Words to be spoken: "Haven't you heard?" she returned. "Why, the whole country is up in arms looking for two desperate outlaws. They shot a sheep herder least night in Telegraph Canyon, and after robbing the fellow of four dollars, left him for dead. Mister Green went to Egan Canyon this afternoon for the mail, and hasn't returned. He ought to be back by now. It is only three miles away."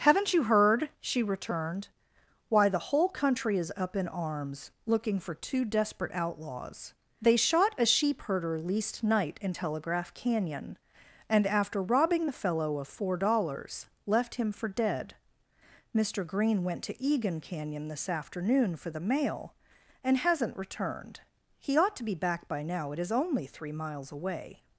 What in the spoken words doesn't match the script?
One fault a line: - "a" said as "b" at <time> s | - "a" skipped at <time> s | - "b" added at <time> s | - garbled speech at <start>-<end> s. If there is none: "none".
none